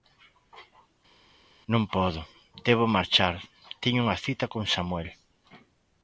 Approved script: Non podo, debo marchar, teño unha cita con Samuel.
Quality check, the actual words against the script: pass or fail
pass